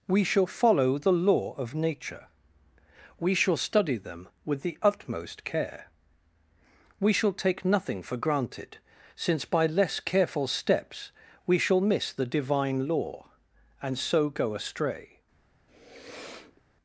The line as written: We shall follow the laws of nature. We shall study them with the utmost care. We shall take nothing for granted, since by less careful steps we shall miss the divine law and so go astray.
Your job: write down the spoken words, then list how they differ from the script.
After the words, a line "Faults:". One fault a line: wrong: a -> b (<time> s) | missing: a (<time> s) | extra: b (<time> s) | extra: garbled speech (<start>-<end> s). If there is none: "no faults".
We shall follow the law of nature. We shall study them with the utmost care. We shall take nothing for granted, since by less careful steps we shall miss the divine law and so go astray.
Faults:
wrong: laws -> law (1.1 s)